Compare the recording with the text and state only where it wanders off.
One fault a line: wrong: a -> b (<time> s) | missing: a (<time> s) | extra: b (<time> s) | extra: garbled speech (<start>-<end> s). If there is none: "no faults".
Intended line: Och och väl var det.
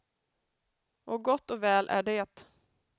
extra: gott (1.2 s)
wrong: var -> är (1.9 s)